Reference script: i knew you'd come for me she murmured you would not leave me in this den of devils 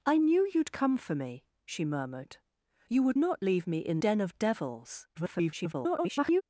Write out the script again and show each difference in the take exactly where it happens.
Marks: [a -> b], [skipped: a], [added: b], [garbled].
i knew you'd come for me she murmured you would not leave me in [skipped: this] den of devils [garbled]